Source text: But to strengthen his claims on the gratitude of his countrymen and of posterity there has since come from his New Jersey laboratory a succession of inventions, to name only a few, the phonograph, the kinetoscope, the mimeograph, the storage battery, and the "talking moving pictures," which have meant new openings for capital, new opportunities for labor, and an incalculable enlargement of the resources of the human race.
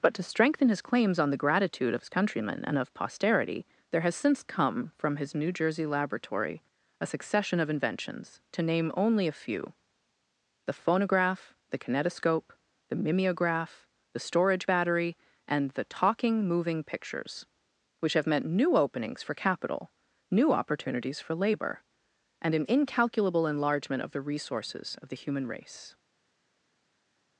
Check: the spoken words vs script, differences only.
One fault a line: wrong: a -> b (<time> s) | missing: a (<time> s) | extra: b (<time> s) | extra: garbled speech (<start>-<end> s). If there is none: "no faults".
no faults